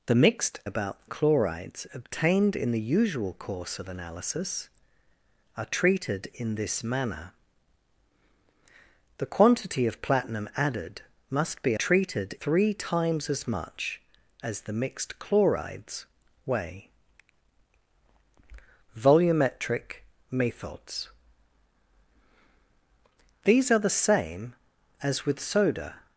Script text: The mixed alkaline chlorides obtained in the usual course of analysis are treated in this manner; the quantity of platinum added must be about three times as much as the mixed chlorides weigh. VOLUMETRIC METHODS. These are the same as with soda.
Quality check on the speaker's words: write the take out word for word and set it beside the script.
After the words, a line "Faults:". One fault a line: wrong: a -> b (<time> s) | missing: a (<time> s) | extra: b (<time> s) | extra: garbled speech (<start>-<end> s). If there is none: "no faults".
The mixed about chlorides obtained in the usual course of analysis are treated in this manner; the quantity of platinum added must be treated three times as much as the mixed chlorides weigh. VOLUMETRIC METHODS. These are the same as with soda.
Faults:
wrong: alkaline -> about (0.6 s)
wrong: about -> treated (11.7 s)